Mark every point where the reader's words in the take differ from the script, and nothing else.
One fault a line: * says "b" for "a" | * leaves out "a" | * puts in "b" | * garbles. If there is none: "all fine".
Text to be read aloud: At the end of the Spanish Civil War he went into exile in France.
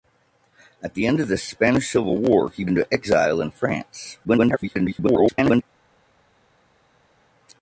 * leaves out "went"
* garbles